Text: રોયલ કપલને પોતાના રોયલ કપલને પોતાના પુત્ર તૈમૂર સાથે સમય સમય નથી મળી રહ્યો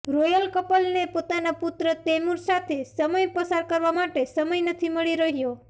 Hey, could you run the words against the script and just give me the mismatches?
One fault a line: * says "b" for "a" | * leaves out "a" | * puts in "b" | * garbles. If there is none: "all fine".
* leaves out "રોયલ કપલને પોતાના"
* puts in "પસાર કરવા માટે"